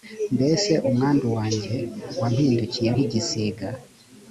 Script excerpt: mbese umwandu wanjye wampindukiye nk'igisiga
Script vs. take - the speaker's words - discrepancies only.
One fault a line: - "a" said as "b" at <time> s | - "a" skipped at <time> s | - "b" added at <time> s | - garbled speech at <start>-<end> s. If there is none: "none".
none